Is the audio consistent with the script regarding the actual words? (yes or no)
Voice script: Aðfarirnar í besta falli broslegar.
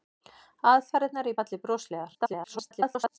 no